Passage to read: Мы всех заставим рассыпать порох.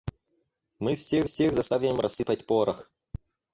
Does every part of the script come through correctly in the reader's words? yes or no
no